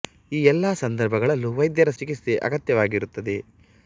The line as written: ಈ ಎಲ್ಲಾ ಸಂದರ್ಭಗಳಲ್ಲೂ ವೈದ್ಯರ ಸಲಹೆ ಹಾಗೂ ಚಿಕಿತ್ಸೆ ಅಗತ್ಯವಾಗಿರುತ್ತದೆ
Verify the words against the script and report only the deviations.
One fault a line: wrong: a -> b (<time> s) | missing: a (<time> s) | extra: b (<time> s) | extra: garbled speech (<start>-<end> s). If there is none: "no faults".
missing: ಸಲಹೆ ಹಾಗೂ (1.9 s)